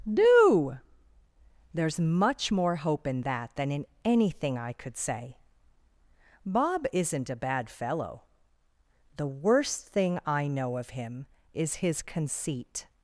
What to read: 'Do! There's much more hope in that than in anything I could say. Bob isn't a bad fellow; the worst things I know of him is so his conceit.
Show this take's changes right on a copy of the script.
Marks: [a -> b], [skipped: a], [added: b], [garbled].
'Do! There's much more hope in that than in anything I could say. Bob isn't a bad fellow; the worst [things -> thing] I know of him is [skipped: so] his conceit.